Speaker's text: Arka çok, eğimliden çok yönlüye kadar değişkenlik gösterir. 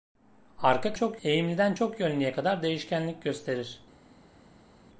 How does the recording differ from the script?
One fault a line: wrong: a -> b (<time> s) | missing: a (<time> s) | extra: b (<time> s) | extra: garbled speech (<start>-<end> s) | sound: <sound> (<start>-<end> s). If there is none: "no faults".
no faults